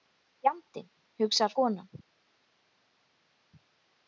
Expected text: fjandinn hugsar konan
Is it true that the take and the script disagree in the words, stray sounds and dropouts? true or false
false